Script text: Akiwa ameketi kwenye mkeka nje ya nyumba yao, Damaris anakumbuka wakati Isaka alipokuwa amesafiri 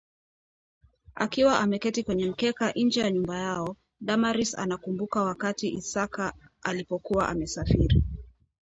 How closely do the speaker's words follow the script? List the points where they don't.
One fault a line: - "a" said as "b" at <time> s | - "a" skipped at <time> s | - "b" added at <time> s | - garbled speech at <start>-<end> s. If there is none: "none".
none